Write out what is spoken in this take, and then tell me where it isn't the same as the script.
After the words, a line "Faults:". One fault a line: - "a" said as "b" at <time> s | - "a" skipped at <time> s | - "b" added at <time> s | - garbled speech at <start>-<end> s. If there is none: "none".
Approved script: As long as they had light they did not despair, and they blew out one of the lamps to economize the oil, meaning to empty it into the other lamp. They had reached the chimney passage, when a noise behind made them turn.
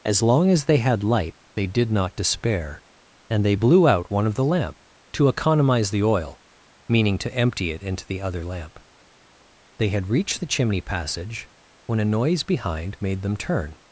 As long as they had light they did not despair, and they blew out one of the lamp to economize the oil, meaning to empty it into the other lamp. They had reached the chimney passage, when a noise behind made them turn.
Faults:
- "lamps" said as "lamp" at 4.4 s